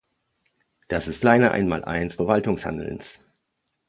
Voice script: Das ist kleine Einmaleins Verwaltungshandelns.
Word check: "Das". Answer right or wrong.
right